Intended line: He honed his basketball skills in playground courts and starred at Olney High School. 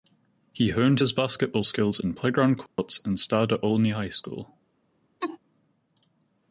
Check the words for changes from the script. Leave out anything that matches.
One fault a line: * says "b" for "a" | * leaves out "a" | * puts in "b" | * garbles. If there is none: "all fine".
all fine